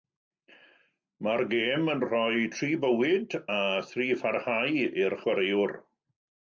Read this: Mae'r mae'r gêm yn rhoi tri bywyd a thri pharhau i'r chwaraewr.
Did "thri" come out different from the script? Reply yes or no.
no